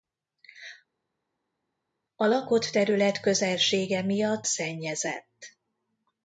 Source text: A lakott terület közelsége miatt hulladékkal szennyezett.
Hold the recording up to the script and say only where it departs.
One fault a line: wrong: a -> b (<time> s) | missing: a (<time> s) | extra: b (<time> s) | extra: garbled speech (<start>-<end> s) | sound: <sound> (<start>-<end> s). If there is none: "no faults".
missing: hulladékkal (4.5 s)